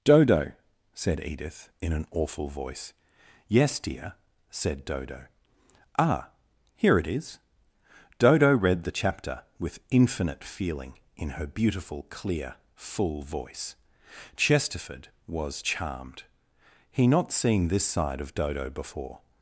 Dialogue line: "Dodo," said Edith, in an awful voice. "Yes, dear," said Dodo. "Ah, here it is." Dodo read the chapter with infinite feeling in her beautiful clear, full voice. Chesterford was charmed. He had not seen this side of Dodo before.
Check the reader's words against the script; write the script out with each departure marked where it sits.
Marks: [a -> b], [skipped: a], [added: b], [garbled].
"Dodo," said Edith, in an awful voice. "Yes, dear," said Dodo. "Ah, here it is." Dodo read the chapter with infinite feeling in her beautiful clear, full voice. Chesterford was charmed. He [skipped: had] not seen this side of Dodo before.